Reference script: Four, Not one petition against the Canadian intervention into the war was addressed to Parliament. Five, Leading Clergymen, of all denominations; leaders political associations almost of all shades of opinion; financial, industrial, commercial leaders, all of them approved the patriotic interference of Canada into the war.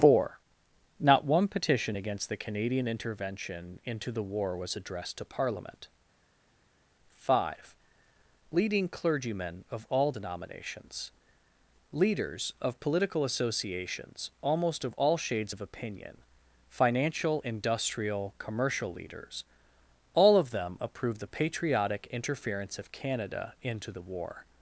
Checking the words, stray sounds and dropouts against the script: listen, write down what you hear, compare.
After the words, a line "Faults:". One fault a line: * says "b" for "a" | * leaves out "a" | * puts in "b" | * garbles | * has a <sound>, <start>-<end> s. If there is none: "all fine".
Four, Not one petition against the Canadian intervention into the war was addressed to Parliament. Five, Leading Clergymen, of all denominations; leaders of political associations almost of all shades of opinion; financial, industrial, commercial leaders, all of them approved the patriotic interference of Canada into the war.
Faults:
* puts in "of"